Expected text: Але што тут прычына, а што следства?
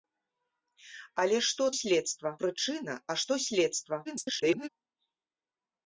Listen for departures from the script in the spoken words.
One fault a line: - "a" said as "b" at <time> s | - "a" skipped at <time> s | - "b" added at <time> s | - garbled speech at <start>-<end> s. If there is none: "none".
- "тут" said as "следства" at 1.8 s
- garbled speech at 4.0-4.7 s